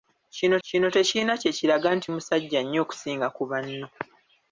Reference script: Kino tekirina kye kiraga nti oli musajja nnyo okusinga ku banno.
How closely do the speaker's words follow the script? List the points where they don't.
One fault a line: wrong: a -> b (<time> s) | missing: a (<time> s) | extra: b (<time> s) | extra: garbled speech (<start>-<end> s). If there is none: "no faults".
extra: kino (0.7 s)
missing: oli (2.1 s)